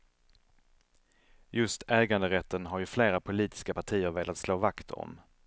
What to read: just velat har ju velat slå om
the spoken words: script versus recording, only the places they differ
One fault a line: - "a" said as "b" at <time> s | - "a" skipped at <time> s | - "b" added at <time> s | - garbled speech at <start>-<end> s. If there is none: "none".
- "velat" said as "äganderätten" at 1.9 s
- "flera politiska partier" added at 2.9 s
- "vakt" added at 4.6 s